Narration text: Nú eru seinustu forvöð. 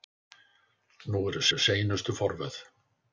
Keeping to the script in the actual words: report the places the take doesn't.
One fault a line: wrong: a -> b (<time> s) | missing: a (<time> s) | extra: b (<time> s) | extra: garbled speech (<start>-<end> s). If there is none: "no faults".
extra: eru (1.5 s)